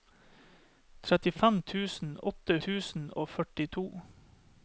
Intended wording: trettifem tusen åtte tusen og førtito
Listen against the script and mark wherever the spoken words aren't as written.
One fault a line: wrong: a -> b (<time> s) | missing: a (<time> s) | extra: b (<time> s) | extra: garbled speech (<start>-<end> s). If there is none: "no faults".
no faults